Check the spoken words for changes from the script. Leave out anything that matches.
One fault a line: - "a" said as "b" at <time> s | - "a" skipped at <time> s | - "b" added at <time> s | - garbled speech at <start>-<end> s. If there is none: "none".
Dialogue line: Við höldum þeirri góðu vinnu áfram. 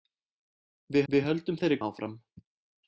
- "við" added at 1.1 s
- "góðu vinnu" skipped at 1.8 s